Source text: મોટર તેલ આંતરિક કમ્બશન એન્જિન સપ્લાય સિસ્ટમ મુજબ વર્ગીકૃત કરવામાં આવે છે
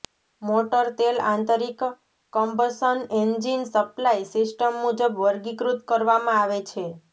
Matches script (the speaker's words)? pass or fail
pass